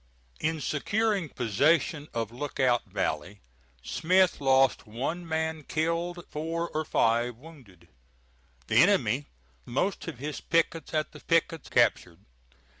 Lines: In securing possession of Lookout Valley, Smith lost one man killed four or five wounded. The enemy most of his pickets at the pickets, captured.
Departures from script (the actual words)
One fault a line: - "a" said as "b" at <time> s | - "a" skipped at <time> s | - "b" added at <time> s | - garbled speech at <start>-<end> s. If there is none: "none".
none